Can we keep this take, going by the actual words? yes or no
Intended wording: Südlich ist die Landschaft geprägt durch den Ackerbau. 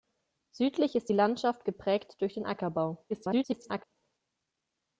no